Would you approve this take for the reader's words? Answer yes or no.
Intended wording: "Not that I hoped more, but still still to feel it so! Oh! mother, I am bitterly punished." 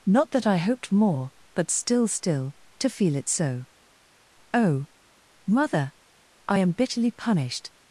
yes